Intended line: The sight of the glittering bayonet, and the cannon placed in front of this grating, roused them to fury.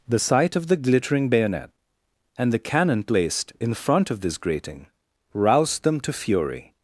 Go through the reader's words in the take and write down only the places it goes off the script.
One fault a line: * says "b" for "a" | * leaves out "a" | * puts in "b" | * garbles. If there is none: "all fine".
all fine